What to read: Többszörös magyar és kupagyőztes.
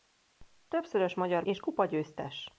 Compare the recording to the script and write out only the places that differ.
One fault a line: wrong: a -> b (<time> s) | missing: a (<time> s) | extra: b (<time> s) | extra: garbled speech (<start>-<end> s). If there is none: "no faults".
no faults